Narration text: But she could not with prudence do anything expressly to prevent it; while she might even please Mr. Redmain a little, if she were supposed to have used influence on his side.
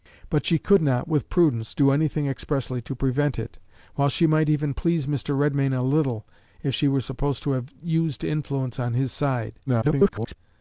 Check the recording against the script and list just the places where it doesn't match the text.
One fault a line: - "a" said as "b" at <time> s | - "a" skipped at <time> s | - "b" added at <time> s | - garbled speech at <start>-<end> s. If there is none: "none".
- garbled speech at 9.7-10.4 s